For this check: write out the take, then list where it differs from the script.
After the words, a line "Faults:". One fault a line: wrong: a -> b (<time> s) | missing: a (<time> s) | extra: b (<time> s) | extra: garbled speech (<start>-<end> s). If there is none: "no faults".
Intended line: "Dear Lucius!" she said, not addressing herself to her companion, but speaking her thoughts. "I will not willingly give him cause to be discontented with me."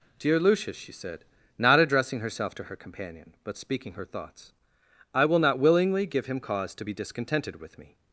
"Dear Lucius!" she said, not addressing herself to her companion, but speaking her thoughts. "I will not willingly give him cause to be discontented with me."
Faults:
no faults